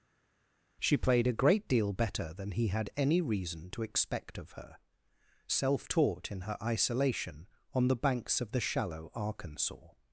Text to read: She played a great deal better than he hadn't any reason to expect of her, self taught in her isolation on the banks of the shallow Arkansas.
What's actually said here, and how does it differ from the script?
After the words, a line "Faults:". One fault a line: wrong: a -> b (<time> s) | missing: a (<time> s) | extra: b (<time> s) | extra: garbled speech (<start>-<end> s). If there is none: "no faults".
She played a great deal better than he had any reason to expect of her, self taught in her isolation on the banks of the shallow Arkansas.
Faults:
wrong: hadn't -> had (2.7 s)